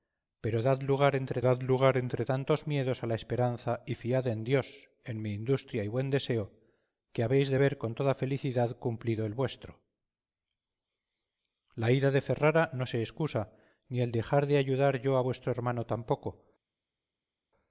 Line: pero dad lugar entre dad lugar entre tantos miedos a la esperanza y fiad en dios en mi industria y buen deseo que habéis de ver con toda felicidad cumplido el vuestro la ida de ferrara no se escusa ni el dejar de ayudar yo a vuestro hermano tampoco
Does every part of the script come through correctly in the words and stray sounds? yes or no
yes